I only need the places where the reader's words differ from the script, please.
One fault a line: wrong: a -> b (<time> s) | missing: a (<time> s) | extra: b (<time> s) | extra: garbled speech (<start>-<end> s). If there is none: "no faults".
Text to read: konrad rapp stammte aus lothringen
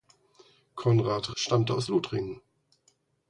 missing: rapp (1.4 s)